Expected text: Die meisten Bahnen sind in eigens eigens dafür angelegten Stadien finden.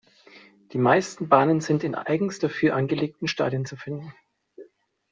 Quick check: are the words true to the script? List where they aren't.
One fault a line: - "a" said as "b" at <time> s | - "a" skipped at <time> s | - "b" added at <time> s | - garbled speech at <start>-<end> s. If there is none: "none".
- "eigens" skipped at 2.4 s
- "zu" added at 3.6 s